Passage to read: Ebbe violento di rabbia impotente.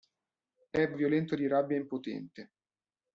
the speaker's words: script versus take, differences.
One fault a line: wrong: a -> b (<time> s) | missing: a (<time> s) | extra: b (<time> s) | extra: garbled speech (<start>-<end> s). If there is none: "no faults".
no faults